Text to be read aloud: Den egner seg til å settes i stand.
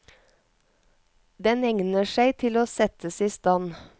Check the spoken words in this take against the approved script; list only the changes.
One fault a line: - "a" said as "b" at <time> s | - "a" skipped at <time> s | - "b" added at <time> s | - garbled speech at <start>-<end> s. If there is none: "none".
none